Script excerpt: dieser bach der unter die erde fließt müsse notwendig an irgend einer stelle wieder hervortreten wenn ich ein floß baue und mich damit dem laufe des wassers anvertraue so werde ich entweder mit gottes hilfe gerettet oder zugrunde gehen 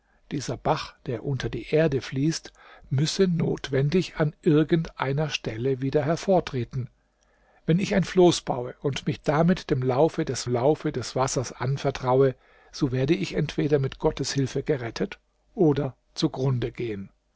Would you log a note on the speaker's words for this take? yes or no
yes